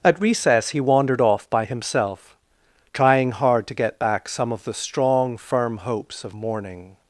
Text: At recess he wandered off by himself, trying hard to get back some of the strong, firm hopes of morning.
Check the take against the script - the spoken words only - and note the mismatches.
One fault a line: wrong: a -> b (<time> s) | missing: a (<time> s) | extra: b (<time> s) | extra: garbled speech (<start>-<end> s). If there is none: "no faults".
no faults